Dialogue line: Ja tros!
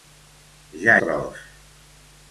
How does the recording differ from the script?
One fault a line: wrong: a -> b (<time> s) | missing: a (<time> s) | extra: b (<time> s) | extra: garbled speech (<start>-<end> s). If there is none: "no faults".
no faults